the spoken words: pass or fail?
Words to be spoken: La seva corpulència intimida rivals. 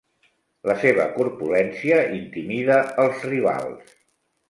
fail